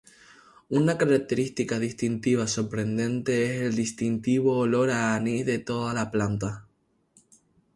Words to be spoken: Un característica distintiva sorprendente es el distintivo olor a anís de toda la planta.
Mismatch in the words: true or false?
true